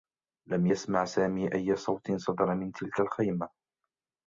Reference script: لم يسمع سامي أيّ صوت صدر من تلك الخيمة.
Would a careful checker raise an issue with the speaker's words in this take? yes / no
no